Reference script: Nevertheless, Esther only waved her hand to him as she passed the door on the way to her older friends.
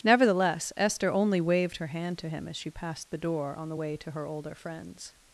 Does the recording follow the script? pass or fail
pass